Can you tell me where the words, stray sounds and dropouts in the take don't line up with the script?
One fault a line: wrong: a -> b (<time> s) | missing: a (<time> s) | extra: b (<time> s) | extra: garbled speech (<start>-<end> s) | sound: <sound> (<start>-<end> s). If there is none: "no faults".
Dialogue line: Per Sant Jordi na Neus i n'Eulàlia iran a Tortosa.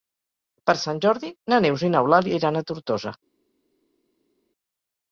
no faults